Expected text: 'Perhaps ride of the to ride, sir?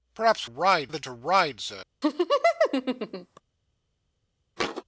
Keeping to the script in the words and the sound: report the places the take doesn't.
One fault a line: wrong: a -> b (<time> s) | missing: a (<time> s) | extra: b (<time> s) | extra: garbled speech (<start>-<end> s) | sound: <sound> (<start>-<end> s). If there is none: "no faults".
sound: laugh (2.0-3.4 s)
sound: thud (4.6-4.8 s)